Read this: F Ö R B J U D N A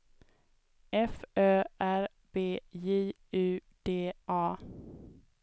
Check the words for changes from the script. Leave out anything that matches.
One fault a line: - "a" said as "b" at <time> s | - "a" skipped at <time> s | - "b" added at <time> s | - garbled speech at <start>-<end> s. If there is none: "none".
- "N" skipped at 4.1 s